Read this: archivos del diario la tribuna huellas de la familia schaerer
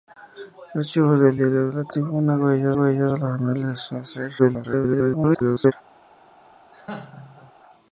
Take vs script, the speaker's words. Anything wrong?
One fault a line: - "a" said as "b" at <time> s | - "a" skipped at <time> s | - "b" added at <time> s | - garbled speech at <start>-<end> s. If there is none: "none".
- "huellas" added at 2.7 s
- garbled speech at 4.4-5.7 s